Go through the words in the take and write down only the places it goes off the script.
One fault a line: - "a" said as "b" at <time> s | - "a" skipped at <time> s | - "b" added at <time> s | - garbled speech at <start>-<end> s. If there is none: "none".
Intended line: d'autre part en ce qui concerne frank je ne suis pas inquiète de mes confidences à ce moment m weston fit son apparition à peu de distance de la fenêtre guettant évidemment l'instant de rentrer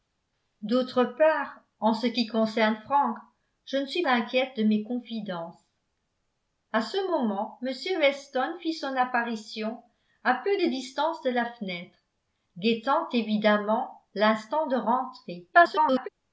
- "pas" skipped at 4.1 s
- garbled speech at 15.5-16.1 s